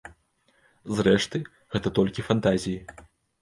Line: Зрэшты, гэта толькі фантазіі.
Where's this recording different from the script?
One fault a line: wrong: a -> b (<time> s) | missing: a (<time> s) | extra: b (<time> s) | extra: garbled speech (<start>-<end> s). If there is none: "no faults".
no faults